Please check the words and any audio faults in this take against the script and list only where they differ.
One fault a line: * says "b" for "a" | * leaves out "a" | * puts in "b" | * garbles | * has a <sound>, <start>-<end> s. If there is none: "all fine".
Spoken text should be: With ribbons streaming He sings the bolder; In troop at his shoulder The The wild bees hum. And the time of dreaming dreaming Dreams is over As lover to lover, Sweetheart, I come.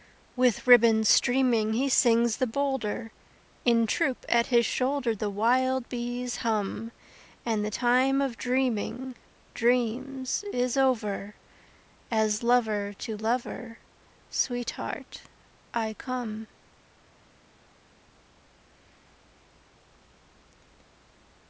* leaves out "The"
* leaves out "dreaming"